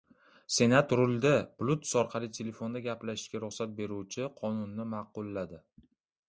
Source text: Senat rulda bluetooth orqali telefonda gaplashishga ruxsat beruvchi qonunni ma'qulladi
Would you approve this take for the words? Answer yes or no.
yes